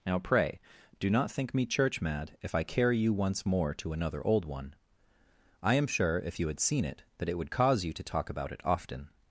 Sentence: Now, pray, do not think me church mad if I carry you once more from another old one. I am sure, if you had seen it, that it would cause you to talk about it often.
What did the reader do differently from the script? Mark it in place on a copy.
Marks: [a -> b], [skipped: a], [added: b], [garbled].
Now, pray, do not think me church mad if I carry you once more [from -> to] another old one. I am sure, if you had seen it, that it would cause you to talk about it often.